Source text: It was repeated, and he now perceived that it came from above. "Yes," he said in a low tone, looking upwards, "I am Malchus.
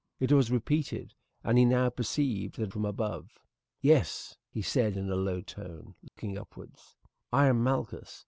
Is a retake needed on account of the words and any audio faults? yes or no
yes